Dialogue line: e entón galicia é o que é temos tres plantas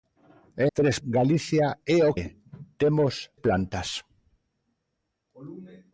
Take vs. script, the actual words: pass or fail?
fail